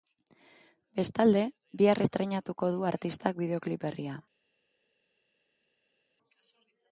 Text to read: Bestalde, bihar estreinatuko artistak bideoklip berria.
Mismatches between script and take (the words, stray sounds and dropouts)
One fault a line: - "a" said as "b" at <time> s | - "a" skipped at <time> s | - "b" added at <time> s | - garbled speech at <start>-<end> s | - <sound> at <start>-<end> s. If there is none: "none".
- "du" added at 2.8 s